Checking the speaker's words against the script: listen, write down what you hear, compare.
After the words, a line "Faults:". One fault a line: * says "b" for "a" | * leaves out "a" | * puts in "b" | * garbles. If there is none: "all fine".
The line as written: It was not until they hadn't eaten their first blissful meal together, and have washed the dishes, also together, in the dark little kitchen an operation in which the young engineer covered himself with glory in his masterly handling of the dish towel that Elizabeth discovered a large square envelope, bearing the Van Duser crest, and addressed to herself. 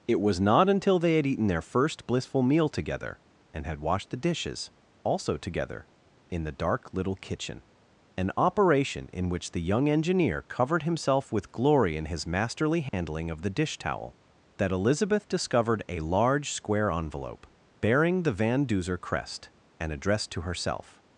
It was not until they had eaten their first blissful meal together, and had washed the dishes, also together, in the dark little kitchen an operation in which the young engineer covered himself with glory in his masterly handling of the dish towel that Elizabeth discovered a large square envelope, bearing the Van Duser crest, and addressed to herself.
Faults:
* says "had" for "hadn't"
* says "had" for "have"